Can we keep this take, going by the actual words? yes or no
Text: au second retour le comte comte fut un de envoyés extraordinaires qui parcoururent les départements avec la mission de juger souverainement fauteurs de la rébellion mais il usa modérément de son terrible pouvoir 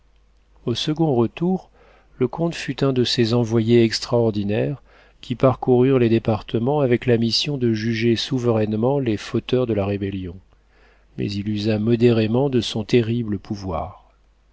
no